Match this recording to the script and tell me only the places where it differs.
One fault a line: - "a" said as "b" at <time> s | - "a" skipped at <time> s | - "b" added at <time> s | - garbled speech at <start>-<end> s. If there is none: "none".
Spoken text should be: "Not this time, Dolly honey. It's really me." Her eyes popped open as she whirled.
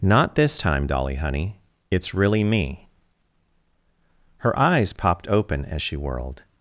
none